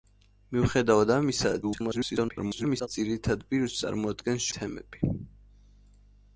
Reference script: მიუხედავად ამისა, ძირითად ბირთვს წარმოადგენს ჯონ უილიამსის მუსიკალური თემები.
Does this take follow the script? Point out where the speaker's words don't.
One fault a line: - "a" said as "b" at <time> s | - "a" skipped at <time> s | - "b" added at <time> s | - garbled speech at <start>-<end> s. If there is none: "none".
- garbled speech at 1.6-2.9 s
- "ჯონ უილიამსის მუსიკალური" skipped at 4.5 s